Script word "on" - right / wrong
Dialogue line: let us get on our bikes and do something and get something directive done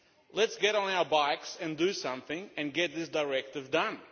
right